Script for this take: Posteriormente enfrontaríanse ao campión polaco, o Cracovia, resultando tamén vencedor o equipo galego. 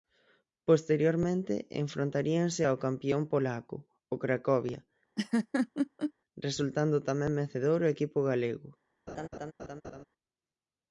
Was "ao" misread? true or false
false